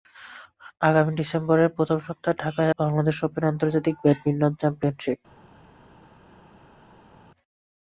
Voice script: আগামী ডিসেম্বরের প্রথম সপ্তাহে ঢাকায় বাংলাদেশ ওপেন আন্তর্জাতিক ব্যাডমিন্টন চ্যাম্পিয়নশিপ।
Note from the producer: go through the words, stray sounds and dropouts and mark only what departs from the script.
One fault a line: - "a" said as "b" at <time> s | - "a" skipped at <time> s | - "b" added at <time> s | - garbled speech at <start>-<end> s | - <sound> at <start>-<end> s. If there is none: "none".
none